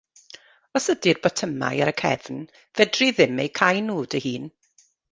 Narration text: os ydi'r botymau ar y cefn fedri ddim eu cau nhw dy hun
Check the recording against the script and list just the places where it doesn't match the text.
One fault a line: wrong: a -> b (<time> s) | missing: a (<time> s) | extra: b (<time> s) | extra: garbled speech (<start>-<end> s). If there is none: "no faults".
no faults